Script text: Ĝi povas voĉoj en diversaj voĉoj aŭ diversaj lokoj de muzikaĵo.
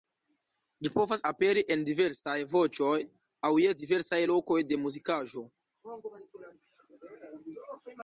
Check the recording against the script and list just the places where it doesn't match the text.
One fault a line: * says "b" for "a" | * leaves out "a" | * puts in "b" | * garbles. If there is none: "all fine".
* says "aperi" for "voĉoj"
* puts in "je"